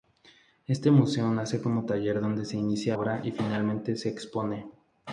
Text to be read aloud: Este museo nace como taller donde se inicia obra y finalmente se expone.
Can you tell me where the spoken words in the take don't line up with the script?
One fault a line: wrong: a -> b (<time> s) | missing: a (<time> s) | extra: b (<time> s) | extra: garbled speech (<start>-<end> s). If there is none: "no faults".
no faults